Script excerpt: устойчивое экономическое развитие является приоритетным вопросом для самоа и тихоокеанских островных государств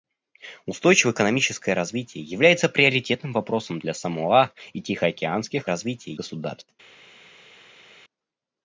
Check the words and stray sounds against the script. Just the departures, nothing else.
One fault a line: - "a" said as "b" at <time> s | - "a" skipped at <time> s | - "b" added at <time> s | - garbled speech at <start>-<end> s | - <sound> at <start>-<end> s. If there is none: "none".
- "островных" said as "развитие" at 5.7 s